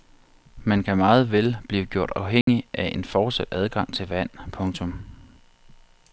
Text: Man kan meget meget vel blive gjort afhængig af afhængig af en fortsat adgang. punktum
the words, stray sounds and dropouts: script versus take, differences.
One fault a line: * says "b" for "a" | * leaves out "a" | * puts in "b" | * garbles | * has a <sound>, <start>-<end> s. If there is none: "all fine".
* leaves out "meget"
* has a dropout, 2.4-2.5 s
* leaves out "afhængig af"
* puts in "til vand"